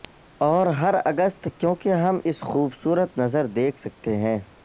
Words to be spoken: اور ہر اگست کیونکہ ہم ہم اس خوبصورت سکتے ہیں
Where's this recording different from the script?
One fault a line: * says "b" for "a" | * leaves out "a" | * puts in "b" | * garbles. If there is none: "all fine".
* leaves out "ہم"
* puts in "نظر دیکھ"